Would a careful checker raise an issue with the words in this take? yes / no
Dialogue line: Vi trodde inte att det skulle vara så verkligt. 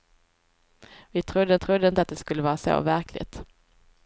yes